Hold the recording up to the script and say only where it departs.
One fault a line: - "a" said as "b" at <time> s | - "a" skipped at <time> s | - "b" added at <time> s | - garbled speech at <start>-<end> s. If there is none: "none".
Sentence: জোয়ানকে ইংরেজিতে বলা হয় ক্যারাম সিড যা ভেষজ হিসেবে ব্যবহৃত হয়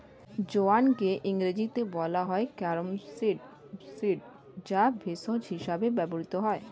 - "সিড" added at 3.9 s